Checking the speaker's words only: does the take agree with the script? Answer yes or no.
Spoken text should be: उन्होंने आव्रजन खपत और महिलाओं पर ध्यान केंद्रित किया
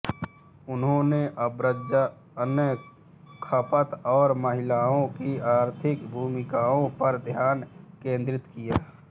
no